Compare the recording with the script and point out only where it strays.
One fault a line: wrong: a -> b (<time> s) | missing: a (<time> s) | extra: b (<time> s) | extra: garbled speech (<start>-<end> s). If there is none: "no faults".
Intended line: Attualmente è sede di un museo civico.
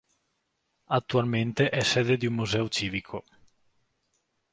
no faults